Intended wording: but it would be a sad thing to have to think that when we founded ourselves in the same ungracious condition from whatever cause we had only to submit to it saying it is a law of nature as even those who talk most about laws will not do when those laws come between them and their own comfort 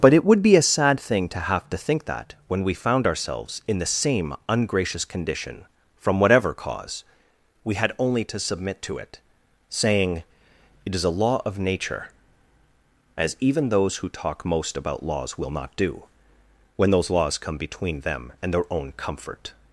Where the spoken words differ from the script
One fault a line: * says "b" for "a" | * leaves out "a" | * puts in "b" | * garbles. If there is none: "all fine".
* says "found" for "founded"